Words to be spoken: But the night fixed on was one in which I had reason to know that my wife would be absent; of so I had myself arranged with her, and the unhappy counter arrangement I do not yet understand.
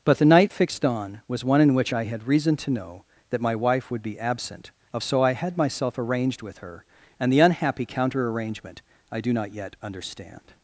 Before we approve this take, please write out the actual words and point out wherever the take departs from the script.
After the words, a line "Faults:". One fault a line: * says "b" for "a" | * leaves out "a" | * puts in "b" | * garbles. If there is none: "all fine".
But the night fixed on was one in which I had reason to know that my wife would be absent; of so I had myself arranged with her, and the unhappy counter arrangement I do not yet understand.
Faults:
all fine